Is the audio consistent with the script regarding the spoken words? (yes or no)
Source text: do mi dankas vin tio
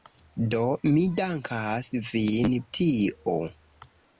yes